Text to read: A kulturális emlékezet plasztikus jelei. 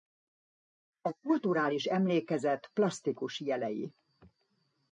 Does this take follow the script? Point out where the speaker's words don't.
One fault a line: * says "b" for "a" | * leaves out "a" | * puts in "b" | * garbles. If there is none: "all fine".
all fine